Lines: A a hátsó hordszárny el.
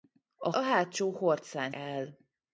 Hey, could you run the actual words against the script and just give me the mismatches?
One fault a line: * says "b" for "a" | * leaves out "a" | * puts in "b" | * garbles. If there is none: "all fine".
all fine